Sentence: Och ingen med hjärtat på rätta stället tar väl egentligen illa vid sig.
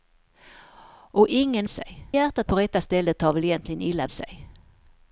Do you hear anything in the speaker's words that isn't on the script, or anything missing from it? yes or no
yes